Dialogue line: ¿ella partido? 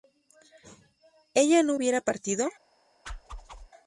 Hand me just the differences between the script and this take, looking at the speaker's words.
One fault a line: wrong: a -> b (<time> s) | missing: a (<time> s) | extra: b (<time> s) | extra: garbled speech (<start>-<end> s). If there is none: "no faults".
extra: no hubiera (1.6 s)